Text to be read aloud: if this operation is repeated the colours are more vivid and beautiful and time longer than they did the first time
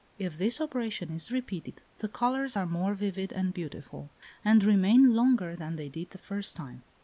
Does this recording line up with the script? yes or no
no